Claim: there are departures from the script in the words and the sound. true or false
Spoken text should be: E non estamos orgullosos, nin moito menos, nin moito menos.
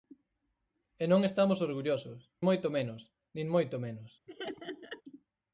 true